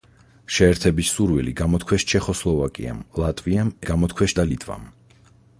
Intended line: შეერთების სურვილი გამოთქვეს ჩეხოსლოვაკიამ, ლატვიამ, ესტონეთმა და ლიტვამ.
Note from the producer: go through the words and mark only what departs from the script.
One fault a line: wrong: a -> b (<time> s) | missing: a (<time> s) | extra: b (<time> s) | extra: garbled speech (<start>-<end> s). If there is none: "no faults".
wrong: ესტონეთმა -> გამოთქვეს (3.9 s)